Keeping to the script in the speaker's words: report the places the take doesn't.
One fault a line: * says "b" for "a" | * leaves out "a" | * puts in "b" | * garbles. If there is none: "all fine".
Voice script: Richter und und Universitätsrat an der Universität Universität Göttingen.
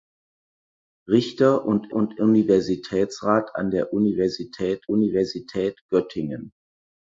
all fine